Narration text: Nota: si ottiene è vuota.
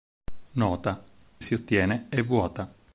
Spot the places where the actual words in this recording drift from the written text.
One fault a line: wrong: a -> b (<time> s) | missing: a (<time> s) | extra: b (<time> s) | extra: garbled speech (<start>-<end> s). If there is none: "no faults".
no faults